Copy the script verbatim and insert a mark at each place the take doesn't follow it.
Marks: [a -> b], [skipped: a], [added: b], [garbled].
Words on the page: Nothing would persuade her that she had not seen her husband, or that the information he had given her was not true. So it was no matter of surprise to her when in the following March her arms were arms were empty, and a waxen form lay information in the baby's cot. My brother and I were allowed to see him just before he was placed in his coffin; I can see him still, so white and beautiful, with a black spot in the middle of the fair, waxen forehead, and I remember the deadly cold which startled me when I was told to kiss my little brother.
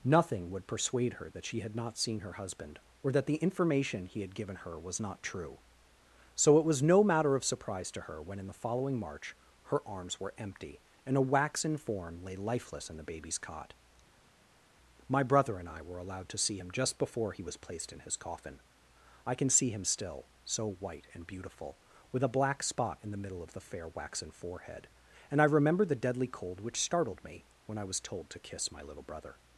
Nothing would persuade her that she had not seen her husband, or that the information he had given her was not true. So it was no matter of surprise to her when in the following March her arms were [skipped: arms were] empty, and a waxen form lay [information -> lifeless] in the baby's cot. My brother and I were allowed to see him just before he was placed in his coffin; I can see him still, so white and beautiful, with a black spot in the middle of the fair, waxen forehead, and I remember the deadly cold which startled me when I was told to kiss my little brother.